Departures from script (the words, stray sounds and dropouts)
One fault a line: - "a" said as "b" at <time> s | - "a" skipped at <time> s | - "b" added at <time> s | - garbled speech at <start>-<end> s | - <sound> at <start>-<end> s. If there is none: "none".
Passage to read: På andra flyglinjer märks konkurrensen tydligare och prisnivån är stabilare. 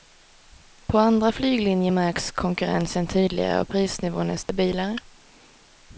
- dropout at 4.4-4.5 s